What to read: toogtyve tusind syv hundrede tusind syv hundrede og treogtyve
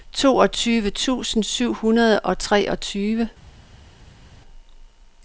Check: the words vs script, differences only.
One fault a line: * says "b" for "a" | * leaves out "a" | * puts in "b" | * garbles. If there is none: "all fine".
* leaves out "tusind syv hundrede"